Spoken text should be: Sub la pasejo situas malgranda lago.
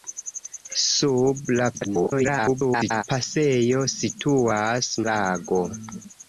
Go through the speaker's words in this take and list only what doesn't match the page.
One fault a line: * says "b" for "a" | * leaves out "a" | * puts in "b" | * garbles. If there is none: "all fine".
* garbles
* leaves out "malgranda"